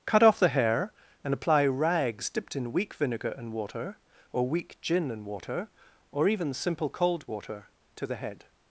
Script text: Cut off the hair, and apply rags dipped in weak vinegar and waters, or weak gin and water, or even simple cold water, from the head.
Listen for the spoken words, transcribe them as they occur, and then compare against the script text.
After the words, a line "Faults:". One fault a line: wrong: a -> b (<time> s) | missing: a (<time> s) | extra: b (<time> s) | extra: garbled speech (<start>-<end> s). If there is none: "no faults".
Cut off the hair, and apply rags dipped in weak vinegar and water, or weak gin and water, or even simple cold water, to the head.
Faults:
wrong: waters -> water (3.5 s)
wrong: from -> to (8.0 s)